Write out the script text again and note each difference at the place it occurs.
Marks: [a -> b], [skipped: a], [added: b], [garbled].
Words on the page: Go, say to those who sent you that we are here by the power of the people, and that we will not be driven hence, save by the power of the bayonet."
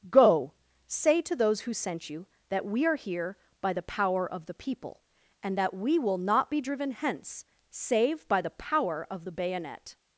Go, say to those who sent you that we are here by the power of the people, and that we will not be driven hence, save by the power of the bayonet."